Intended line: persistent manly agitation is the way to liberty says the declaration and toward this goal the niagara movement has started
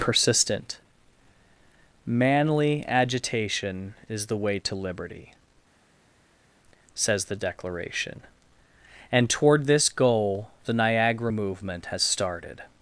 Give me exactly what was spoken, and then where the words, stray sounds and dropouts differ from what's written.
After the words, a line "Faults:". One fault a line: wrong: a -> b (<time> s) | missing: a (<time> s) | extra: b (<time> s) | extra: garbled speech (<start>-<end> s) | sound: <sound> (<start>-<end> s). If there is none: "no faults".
persistent manly agitation is the way to liberty says the declaration and toward this goal the niagara movement has started
Faults:
no faults